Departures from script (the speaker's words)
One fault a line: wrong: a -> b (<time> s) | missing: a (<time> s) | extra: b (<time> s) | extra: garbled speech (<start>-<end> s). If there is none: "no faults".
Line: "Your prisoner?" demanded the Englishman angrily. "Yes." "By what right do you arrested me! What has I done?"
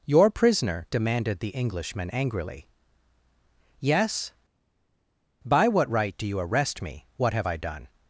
wrong: arrested -> arrest (6.4 s)
wrong: has -> have (7.3 s)